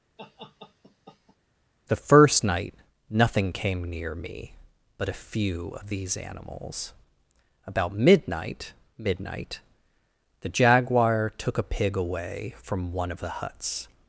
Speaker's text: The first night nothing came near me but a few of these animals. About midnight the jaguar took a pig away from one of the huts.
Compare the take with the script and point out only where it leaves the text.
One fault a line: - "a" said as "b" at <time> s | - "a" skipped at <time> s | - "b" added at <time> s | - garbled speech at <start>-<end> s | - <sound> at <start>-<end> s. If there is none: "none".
- laugh at 0.2-1.4 s
- "midnight" added at 9.0 s